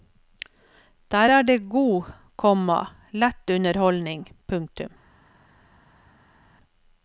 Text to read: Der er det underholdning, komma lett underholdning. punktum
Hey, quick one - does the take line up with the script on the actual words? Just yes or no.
no